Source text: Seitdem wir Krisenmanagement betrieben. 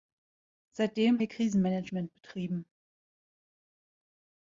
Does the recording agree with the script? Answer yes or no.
yes